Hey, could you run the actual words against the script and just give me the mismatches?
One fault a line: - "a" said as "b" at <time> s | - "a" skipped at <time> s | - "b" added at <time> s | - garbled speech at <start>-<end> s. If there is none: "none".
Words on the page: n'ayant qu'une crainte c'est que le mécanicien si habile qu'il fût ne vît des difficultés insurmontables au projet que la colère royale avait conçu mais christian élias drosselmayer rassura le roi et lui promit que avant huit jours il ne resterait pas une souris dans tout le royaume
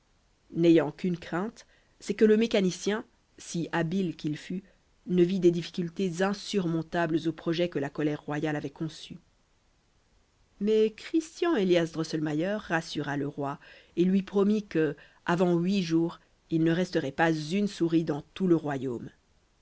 none